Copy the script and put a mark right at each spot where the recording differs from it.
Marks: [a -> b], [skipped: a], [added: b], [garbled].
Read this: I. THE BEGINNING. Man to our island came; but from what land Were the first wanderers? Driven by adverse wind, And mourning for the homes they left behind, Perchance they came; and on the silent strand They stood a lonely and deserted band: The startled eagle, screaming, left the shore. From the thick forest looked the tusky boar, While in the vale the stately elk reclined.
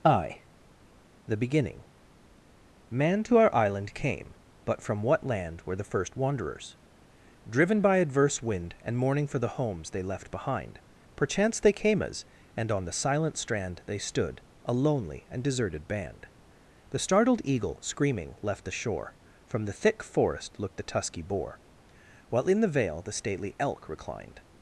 I. THE BEGINNING. Man to our island came; but from what land Were the first wanderers? Driven by adverse wind, And mourning for the homes they left behind, Perchance they came; [added: as] and on the silent strand They stood a lonely and deserted band: The startled eagle, screaming, left the shore. From the thick forest looked the tusky boar, While in the vale the stately elk reclined.